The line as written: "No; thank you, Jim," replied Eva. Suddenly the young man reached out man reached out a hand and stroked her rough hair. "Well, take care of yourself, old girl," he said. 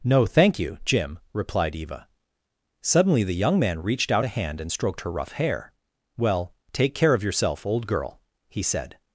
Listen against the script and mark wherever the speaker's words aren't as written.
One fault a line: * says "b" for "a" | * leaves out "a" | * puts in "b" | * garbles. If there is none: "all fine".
* leaves out "man reached out"